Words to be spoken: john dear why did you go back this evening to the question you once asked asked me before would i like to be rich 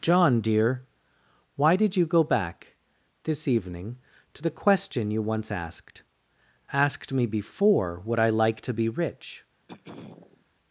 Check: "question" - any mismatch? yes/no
no